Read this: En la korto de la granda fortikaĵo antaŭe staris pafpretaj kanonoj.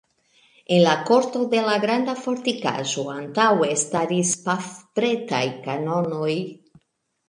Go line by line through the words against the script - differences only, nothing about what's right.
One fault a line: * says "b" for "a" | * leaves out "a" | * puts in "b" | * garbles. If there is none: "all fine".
all fine